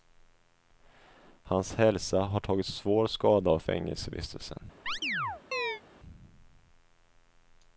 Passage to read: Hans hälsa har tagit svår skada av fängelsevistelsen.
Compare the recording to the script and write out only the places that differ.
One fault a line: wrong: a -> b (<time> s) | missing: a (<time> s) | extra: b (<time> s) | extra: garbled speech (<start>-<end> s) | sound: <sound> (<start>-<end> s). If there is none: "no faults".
sound: chirp (4.9-5.8 s)